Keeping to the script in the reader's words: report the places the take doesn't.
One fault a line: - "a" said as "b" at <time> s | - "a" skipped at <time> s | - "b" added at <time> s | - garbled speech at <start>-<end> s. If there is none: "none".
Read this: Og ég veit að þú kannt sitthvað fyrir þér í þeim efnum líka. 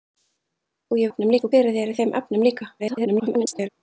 - "veit" said as "efnum" at 1.1 s
- "kannt sitthvað" skipped at 1.5 s
- garbled speech at 2.8-3.7 s